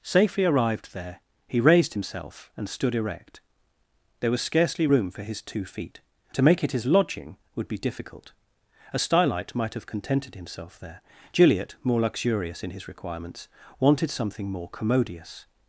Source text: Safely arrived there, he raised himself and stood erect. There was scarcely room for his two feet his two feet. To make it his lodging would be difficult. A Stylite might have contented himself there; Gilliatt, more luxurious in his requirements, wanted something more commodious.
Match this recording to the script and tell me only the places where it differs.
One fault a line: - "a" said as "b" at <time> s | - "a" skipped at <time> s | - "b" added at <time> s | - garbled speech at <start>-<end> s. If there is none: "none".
- "his two feet" skipped at 6.0 s